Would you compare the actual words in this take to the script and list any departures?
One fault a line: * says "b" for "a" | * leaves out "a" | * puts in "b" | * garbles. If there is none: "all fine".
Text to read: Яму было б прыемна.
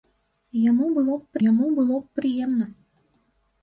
* puts in "яму было б"